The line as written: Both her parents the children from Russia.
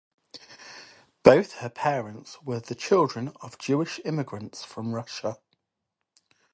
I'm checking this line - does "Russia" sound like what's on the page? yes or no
yes